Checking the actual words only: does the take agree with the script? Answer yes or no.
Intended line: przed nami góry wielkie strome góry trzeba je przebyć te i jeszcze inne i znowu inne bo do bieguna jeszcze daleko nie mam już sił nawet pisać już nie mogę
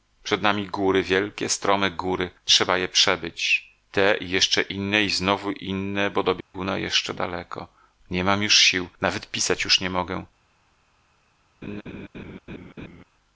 yes